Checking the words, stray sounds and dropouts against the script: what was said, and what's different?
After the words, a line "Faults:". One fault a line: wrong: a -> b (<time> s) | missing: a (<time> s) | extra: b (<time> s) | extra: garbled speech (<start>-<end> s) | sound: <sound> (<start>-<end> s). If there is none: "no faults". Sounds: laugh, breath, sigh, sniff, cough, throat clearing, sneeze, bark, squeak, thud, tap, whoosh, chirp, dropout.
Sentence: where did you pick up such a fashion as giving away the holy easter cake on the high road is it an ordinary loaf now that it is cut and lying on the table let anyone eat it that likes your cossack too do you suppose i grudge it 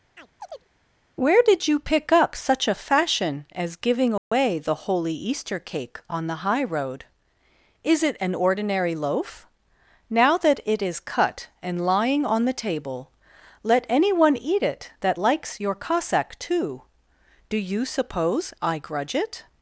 where did you pick up such a fashion as giving away the holy easter cake on the high road is it an ordinary loaf now that it is cut and lying on the table let anyone eat it that likes your cossack too do you suppose i grudge it
Faults:
sound: chirp (0.1-0.7 s)
sound: dropout (4.2-4.3 s)